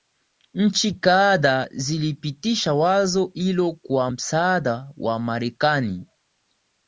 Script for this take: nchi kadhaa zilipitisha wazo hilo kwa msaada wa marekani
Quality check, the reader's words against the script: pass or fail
pass